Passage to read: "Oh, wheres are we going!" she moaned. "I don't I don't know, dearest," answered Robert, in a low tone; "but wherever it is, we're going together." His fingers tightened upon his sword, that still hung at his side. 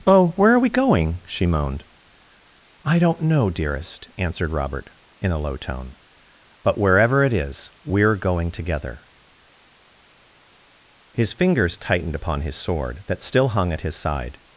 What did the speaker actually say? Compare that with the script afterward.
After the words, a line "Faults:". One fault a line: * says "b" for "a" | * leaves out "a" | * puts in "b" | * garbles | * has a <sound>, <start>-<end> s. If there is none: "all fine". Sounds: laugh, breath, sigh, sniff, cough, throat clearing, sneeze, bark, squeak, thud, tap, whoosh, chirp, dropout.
"Oh, where are we going!" she moaned. "I don't know, dearest," answered Robert, in a low tone; "but wherever it is, we're going together." His fingers tightened upon his sword, that still hung at his side.
Faults:
* says "where" for "wheres"
* leaves out "I don't"